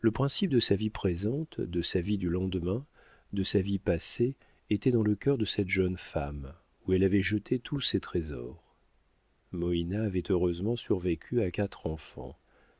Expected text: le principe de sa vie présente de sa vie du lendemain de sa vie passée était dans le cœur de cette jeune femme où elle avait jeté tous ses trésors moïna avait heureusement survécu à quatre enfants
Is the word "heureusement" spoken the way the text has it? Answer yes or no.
yes